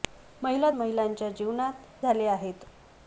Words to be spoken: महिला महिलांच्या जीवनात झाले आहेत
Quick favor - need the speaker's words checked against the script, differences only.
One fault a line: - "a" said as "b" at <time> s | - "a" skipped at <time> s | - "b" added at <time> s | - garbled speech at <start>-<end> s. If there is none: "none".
none